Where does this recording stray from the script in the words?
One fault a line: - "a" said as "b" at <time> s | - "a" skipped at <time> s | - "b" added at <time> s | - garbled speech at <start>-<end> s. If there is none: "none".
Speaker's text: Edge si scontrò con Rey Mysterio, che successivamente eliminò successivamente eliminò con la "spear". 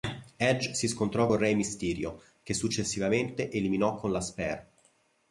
- "successivamente eliminò" skipped at 3.9 s